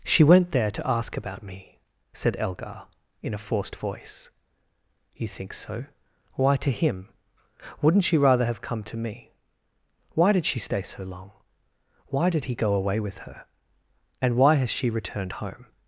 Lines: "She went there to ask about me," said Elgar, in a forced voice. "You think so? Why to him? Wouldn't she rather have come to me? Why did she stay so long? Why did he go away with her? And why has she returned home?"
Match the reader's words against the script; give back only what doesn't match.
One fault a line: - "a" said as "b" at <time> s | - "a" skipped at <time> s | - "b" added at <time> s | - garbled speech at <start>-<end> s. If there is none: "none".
none